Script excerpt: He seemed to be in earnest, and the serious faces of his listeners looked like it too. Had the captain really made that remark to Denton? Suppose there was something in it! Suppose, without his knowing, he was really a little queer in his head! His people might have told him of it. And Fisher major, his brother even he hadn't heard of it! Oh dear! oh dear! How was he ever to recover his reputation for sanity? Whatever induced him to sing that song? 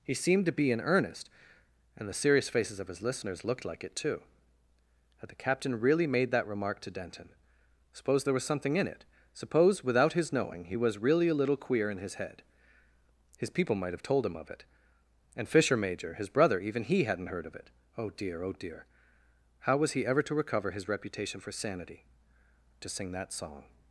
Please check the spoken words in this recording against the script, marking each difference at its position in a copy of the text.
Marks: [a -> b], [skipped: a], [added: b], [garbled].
He seemed to be in earnest, and the serious faces of his listeners looked like it too. Had the captain really made that remark to Denton? Suppose there was something in it! Suppose, without his knowing, he was really a little queer in his head! His people might have told him of it. And Fisher major, his brother even he hadn't heard of it! Oh dear! oh dear! How was he ever to recover his reputation for sanity? [skipped: Whatever induced him] to sing that song?